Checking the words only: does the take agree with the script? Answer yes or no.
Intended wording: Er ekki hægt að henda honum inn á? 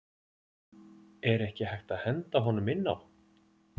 yes